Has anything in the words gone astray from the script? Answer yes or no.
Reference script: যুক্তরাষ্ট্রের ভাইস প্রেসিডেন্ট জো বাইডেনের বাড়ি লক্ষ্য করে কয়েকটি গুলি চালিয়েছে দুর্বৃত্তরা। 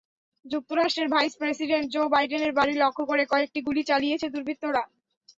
no